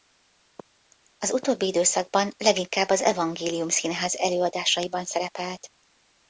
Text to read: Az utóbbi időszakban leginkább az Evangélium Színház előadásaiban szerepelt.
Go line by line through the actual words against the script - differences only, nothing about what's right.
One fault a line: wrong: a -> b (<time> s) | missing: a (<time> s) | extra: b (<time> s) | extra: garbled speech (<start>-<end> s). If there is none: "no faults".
no faults